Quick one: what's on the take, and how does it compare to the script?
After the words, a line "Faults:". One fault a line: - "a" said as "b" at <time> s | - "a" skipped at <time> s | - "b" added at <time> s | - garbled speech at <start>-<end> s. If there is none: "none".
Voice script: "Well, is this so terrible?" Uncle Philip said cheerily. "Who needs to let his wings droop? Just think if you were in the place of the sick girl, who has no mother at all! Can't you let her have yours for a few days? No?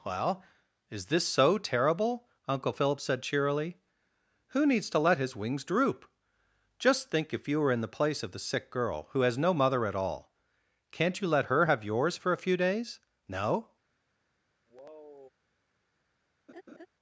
"Well, is this so terrible?" Uncle Philip said cheerily. "Who needs to let his wings droop? Just think if you were in the place of the sick girl, who has no mother at all! Can't you let her have yours for a few days? No?
Faults:
none